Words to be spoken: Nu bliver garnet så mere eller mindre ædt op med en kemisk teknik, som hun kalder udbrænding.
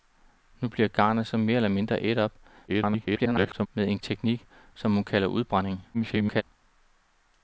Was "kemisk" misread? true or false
true